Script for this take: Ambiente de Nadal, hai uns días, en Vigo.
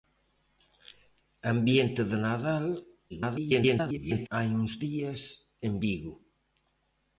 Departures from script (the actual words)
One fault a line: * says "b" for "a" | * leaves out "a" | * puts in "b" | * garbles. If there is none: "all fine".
* garbles